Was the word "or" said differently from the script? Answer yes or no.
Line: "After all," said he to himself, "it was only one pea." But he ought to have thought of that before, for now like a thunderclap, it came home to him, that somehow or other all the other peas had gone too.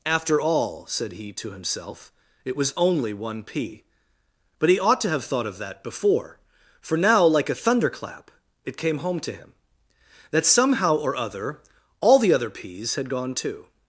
no